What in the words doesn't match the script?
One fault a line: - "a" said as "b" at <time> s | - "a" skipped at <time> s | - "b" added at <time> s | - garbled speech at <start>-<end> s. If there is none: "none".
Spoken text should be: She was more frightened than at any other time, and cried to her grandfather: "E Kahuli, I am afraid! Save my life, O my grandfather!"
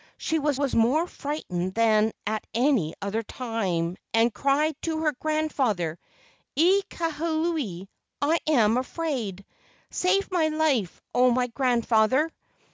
- "was" added at 0.5 s